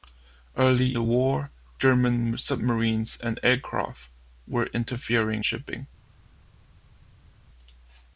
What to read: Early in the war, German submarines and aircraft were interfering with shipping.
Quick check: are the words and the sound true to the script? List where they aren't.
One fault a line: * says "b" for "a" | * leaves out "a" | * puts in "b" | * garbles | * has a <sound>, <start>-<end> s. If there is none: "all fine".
* leaves out "in"
* leaves out "with"